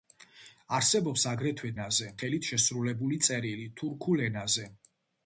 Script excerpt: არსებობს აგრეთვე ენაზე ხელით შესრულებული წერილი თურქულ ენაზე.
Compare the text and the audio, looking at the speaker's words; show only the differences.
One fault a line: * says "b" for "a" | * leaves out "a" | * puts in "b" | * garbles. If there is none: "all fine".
all fine